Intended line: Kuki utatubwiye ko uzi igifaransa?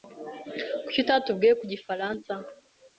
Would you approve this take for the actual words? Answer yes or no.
no